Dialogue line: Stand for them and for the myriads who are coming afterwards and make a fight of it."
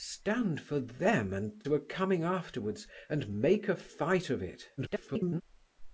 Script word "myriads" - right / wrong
wrong